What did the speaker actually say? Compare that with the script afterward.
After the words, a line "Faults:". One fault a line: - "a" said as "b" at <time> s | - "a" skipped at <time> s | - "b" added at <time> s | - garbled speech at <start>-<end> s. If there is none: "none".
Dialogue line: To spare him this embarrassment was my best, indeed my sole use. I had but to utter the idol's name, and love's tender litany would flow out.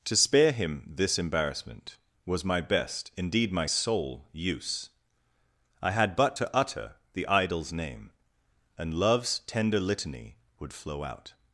To spare him this embarrassment was my best, indeed my sole use. I had but to utter the idol's name, and love's tender litany would flow out.
Faults:
none